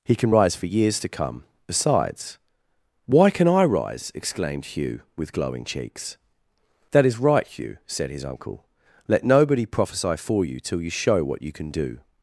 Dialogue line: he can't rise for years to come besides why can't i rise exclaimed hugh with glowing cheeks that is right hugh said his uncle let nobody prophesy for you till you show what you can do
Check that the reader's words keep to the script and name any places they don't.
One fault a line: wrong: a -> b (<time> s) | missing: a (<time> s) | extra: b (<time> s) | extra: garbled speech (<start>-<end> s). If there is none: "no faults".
wrong: can't -> can (0.1 s)
wrong: can't -> can (3.3 s)